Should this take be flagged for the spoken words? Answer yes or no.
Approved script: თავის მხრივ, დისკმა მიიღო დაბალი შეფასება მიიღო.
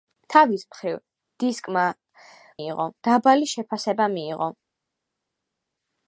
no